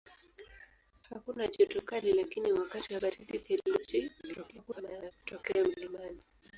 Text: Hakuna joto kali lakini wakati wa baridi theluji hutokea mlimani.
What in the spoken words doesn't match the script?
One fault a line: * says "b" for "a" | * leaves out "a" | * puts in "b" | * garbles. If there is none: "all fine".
* garbles